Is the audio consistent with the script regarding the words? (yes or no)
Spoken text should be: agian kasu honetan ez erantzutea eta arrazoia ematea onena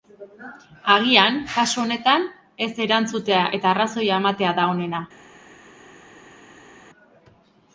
no